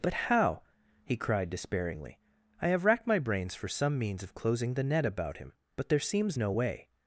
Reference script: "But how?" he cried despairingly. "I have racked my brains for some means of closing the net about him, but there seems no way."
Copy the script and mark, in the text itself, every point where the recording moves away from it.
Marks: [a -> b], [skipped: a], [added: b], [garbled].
"But how?" he cried despairingly. "I have racked my brains for some means of closing the net about him, but there seems no way."